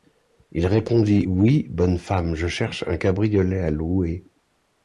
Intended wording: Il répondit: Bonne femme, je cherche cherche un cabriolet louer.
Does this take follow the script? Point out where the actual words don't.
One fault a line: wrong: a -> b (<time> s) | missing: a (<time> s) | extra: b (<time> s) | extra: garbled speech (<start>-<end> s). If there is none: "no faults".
extra: Oui (1.2 s)
missing: cherche (2.8 s)
extra: à (3.6 s)